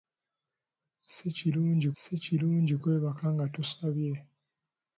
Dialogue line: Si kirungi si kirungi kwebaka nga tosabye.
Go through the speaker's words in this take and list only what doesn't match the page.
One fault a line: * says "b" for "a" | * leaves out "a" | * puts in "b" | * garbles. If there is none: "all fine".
all fine